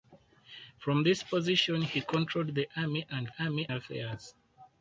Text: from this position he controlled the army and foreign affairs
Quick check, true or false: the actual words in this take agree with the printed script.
false